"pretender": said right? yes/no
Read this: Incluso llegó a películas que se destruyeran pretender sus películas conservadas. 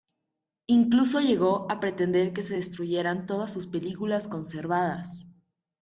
no